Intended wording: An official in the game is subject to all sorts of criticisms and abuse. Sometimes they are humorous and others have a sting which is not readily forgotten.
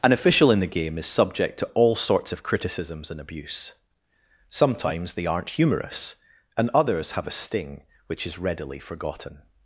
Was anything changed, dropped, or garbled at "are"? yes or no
yes